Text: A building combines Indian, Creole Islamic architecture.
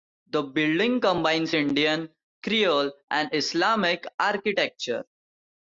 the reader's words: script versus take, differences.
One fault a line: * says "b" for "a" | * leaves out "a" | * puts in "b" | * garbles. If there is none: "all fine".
* says "The" for "A"
* puts in "and"